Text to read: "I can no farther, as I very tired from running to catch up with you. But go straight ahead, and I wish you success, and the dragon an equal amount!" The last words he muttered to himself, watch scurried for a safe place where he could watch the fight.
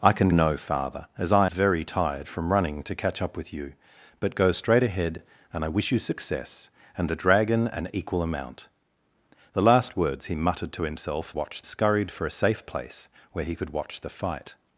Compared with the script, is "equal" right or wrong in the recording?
right